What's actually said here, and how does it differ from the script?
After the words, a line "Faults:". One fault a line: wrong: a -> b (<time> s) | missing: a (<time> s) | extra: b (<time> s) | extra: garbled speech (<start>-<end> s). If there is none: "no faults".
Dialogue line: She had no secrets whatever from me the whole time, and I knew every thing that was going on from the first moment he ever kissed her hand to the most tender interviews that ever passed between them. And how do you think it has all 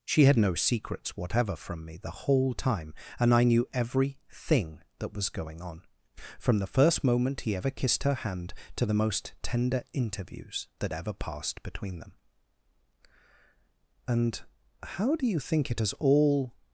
She had no secrets whatever from me the whole time, and I knew every thing that was going on from the first moment he ever kissed her hand to the most tender interviews that ever passed between them. And how do you think it has all
Faults:
no faults